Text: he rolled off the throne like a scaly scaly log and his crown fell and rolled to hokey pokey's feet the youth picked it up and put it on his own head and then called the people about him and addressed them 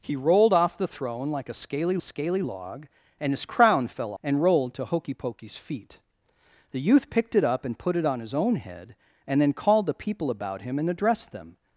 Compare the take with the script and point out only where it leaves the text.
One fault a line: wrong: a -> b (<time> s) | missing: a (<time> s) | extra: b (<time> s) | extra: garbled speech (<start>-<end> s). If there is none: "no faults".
no faults